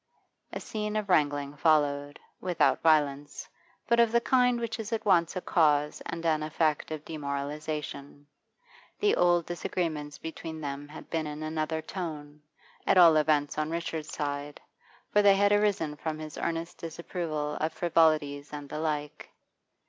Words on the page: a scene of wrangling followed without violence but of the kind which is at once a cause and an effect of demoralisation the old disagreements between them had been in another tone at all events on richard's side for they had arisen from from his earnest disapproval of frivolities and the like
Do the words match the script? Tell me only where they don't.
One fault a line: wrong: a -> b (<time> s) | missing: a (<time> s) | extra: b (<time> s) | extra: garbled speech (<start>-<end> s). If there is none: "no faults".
missing: from (16.2 s)